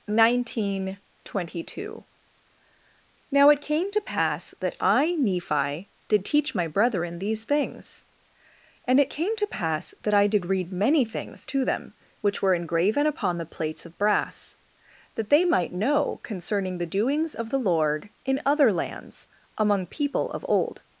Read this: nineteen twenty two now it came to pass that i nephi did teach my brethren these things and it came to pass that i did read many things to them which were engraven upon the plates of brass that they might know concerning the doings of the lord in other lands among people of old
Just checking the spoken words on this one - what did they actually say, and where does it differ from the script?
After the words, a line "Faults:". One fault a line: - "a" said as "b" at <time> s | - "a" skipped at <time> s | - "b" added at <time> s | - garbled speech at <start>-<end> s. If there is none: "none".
nineteen twenty two now it came to pass that i nephi did teach my brethren these things and it came to pass that i did read many things to them which were engraven upon the plates of brass that they might know concerning the doings of the lord in other lands among people of old
Faults:
none